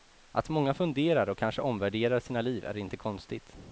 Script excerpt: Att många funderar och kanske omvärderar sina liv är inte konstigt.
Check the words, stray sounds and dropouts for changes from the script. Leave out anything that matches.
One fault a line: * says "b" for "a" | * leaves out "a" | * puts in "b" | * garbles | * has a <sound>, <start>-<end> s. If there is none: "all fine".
all fine